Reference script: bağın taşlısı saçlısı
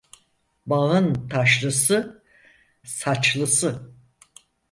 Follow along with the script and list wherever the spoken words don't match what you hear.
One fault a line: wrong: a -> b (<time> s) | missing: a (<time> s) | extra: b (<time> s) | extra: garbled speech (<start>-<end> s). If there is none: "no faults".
no faults